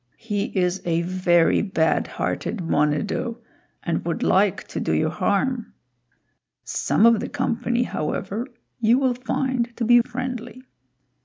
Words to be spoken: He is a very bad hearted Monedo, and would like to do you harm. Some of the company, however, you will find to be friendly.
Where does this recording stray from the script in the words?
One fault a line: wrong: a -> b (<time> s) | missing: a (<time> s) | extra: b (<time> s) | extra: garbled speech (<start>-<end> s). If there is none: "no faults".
no faults